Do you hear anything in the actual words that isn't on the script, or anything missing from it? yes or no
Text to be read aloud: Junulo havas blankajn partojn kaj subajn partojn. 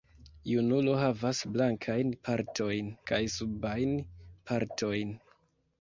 no